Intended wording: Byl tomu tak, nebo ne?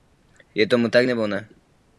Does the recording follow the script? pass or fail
fail